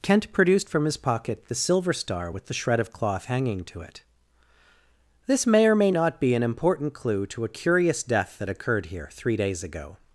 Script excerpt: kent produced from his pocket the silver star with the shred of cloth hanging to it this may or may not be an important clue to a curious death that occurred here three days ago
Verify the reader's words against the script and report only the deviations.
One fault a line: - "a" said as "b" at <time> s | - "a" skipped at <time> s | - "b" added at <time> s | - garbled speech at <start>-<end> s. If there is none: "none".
none